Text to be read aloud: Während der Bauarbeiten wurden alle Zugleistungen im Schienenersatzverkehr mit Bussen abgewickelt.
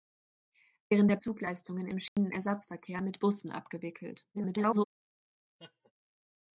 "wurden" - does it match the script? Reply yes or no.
no